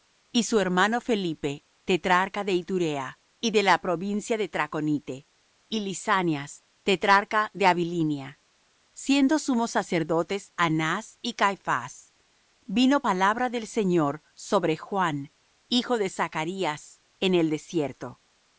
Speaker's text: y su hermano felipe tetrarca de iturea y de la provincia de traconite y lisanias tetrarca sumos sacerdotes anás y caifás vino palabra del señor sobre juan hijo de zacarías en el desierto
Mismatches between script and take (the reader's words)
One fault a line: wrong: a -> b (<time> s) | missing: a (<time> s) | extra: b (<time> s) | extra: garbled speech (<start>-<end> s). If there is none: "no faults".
extra: de abilinia siendo (7.5 s)